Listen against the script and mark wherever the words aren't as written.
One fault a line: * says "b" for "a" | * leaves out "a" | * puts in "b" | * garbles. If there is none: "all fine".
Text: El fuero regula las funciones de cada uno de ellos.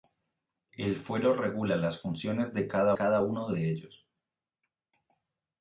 * puts in "cada"